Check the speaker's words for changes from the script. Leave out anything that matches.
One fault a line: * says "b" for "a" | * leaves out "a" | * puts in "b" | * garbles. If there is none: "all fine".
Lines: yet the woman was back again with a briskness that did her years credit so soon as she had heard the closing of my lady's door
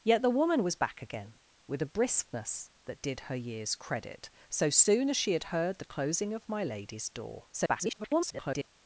* garbles